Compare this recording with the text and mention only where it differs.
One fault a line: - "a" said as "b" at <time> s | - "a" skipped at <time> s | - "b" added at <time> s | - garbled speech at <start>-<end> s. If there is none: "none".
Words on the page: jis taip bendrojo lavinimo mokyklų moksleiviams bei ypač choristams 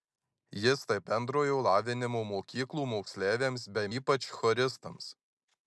none